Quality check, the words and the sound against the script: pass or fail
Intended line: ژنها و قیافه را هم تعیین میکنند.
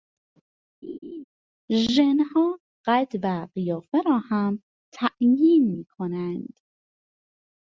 fail